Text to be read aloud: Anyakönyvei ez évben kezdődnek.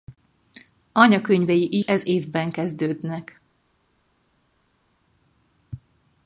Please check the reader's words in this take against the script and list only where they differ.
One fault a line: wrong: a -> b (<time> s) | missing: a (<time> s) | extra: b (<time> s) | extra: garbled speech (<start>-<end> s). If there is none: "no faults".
no faults